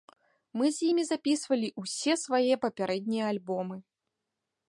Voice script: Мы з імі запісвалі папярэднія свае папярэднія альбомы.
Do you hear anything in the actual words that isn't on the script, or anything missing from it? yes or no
yes